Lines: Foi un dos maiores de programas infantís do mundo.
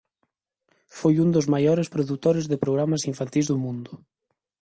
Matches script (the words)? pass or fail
fail